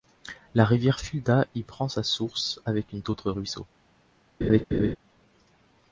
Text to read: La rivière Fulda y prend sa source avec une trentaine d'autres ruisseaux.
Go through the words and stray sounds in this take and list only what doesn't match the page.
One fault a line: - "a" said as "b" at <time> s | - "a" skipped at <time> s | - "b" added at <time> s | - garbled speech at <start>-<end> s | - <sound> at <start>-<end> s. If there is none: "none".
- "trentaine" skipped at 3.0 s
- laugh at 4.4-5.0 s